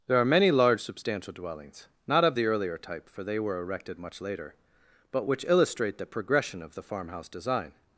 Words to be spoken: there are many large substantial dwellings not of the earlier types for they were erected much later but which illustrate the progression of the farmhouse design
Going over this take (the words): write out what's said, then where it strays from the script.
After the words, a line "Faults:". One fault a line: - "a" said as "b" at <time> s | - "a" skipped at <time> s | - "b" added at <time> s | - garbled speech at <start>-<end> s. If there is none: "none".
there are many large substantial dwellings not of the earlier type for they were erected much later but which illustrate the progression of the farmhouse design
Faults:
- "types" said as "type" at 2.8 s